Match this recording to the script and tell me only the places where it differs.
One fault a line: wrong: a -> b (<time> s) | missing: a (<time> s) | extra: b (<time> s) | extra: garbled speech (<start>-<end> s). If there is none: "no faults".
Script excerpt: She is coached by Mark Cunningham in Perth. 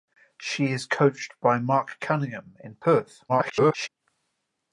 extra: garbled speech (3.3-3.9 s)